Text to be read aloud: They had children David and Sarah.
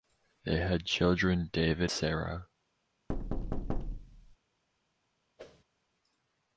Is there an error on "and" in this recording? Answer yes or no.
yes